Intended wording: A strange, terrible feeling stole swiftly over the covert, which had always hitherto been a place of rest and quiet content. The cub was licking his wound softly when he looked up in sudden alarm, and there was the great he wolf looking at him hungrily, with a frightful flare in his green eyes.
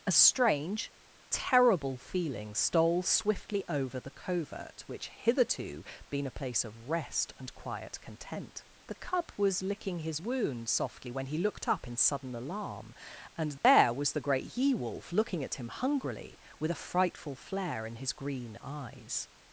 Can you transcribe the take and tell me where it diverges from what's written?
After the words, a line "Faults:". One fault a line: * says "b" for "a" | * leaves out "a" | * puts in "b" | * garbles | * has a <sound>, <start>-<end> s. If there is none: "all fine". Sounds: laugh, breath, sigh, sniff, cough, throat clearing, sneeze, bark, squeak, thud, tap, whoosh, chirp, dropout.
A strange, terrible feeling stole swiftly over the covert, which hitherto been a place of rest and quiet content. The cub was licking his wound softly when he looked up in sudden alarm, and there was the great he wolf looking at him hungrily, with a frightful flare in his green eyes.
Faults:
* leaves out "had always"
* has a dropout, 13.6-13.6 s